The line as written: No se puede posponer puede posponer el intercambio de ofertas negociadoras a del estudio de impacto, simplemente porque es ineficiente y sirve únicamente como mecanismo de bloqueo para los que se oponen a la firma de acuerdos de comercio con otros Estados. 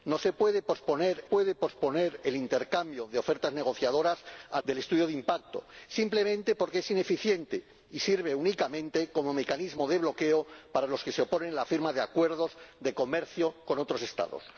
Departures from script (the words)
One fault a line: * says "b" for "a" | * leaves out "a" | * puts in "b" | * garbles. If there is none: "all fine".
all fine